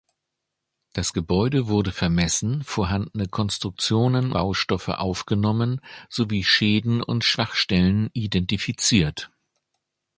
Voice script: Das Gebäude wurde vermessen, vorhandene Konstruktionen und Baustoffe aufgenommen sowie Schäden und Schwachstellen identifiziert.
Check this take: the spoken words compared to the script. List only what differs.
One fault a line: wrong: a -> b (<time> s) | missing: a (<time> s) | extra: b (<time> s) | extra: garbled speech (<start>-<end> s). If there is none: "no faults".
missing: und (4.3 s)